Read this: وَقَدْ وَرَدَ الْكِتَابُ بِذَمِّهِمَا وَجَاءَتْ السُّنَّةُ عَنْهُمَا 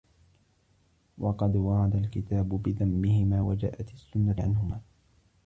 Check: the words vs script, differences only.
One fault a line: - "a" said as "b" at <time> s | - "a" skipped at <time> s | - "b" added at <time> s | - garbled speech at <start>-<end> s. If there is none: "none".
none